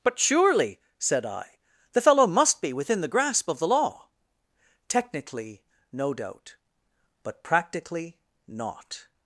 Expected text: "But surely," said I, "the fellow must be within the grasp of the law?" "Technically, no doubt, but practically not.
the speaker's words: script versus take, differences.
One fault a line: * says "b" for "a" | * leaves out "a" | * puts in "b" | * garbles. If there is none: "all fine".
all fine